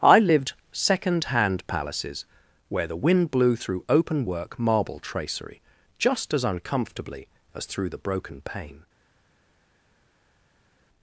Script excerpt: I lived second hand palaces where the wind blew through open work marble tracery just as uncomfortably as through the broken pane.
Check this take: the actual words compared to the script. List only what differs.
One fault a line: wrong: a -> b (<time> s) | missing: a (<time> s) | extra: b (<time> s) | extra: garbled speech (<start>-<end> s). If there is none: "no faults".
no faults